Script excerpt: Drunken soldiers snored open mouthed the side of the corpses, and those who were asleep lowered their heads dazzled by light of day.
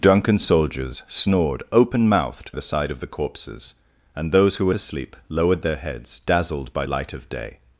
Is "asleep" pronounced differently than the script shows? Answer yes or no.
no